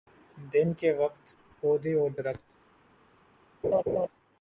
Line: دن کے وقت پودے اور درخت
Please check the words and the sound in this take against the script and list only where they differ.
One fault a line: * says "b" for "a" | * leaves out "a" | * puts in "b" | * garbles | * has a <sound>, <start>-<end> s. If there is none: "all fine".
* has a laugh, 3.6-4.1 s